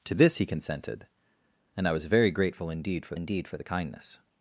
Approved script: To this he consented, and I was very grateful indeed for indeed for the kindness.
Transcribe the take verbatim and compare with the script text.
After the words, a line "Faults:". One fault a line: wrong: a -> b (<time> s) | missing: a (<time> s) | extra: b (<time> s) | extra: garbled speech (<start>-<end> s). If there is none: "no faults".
To this he consented, and I was very grateful indeed for indeed for the kindness.
Faults:
no faults